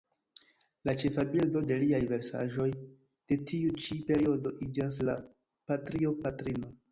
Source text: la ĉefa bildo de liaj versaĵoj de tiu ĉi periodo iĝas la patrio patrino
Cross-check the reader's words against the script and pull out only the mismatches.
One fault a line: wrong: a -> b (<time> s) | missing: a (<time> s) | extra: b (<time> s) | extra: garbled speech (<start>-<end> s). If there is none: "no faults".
no faults